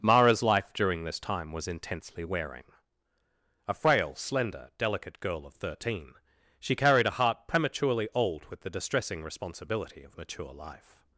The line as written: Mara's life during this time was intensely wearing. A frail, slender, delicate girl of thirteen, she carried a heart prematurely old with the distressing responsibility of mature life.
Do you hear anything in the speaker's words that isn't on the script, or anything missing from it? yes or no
no